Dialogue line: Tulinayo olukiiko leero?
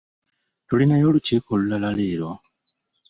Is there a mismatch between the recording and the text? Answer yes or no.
yes